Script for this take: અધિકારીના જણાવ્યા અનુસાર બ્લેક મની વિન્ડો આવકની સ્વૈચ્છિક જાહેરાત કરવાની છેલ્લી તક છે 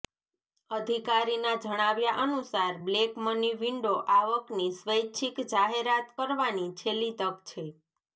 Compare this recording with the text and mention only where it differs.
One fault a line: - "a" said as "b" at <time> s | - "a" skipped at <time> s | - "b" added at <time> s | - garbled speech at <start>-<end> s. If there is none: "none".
none